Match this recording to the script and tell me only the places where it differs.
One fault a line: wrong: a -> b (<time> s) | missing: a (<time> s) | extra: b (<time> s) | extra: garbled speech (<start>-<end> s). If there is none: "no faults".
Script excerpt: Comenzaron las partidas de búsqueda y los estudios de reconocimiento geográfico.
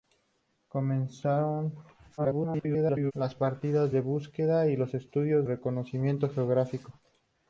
extra: garbled speech (2.2-3.1 s)
missing: de (5.5 s)